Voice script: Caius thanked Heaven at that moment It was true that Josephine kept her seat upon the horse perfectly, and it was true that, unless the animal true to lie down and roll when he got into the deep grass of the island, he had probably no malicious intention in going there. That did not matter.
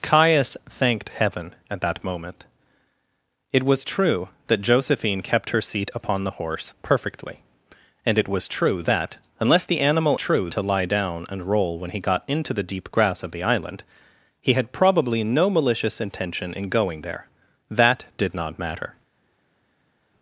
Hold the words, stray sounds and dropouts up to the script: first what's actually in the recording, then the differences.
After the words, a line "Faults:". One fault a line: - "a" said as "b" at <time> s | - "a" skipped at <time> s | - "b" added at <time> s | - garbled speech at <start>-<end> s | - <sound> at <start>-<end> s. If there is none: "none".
Caius thanked Heaven at that moment It was true that Josephine kept her seat upon the horse perfectly, and it was true that, unless the animal true to lie down and roll when he got into the deep grass of the island, he had probably no malicious intention in going there. That did not matter.
Faults:
none